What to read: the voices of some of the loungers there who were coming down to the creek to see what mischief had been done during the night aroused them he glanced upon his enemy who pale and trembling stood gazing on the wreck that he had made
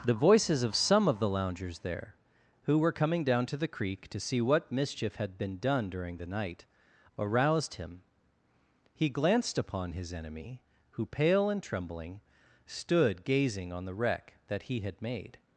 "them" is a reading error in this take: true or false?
true